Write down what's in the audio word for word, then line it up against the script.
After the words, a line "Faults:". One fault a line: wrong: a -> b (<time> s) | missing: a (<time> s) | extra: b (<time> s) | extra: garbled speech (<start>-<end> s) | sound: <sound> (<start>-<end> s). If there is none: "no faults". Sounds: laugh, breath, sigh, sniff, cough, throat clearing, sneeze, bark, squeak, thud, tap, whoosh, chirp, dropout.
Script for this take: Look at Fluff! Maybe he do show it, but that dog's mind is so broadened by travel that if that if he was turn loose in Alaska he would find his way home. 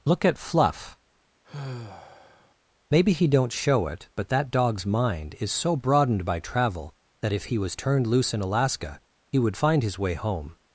Look at Fluff! Maybe he don't show it, but that dog's mind is so broadened by travel that if he was turned loose in Alaska he would find his way home.
Faults:
sound: sigh (1.4-2.5 s)
wrong: do -> don't (3.3 s)
missing: that if (7.5 s)
wrong: turn -> turned (7.8 s)